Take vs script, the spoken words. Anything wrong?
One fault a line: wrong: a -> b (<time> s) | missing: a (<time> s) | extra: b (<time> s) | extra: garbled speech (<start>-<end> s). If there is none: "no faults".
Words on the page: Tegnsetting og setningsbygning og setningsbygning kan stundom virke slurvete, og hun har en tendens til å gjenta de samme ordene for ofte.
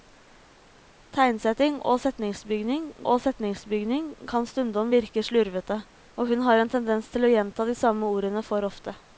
no faults